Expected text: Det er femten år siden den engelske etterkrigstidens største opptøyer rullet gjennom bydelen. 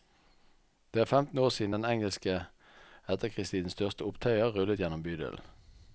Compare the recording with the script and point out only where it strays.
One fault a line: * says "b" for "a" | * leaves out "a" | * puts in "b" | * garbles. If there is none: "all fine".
all fine